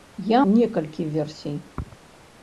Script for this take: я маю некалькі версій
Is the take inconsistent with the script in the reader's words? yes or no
yes